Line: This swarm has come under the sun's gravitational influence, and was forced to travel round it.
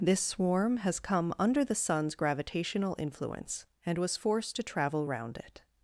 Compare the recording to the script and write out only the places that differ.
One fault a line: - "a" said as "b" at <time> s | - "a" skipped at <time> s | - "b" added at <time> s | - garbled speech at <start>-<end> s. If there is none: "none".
none